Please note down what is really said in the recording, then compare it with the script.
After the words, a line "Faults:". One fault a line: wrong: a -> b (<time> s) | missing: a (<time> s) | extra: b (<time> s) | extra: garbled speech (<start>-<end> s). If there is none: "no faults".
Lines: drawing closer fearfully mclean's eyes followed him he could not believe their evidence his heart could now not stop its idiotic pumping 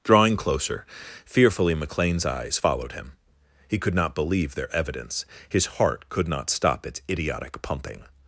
drawing closer fearfully mclean's eyes followed him he could not believe their evidence his heart could not stop its idiotic pumping
Faults:
missing: now (6.3 s)